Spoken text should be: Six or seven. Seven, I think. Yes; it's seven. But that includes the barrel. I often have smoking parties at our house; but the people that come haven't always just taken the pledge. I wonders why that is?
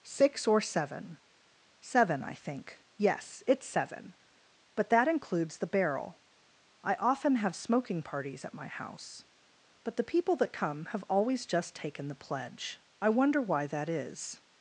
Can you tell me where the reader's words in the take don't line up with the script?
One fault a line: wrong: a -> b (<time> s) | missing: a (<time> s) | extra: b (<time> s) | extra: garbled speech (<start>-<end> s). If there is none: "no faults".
wrong: our -> my (8.5 s)
wrong: haven't -> have (10.9 s)
wrong: wonders -> wonder (13.1 s)